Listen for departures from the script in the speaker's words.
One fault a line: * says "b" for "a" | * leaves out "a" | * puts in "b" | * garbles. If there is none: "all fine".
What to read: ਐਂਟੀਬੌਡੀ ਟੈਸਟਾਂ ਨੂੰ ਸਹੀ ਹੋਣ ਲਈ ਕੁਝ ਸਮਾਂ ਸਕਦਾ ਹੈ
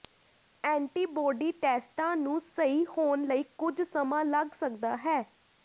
* puts in "ਲੱਗ"